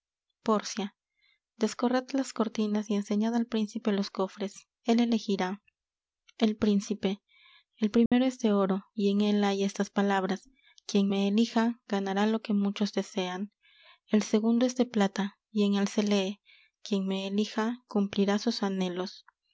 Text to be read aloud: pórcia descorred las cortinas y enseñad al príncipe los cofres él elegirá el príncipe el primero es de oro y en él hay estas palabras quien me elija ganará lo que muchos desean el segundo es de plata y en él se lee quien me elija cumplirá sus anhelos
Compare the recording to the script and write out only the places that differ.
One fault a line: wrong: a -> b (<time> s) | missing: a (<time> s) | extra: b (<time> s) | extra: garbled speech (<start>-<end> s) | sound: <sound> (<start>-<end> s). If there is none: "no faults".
sound: dropout (8.1-8.1 s)